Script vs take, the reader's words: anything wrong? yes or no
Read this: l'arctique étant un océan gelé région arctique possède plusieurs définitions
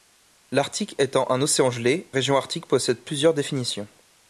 no